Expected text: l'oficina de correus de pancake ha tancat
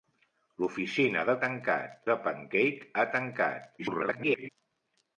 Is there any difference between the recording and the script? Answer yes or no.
yes